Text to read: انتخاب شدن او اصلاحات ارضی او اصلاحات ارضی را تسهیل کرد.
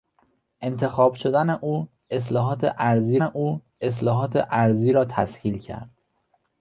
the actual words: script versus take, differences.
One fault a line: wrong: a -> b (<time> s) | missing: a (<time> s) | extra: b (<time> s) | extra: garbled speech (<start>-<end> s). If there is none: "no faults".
no faults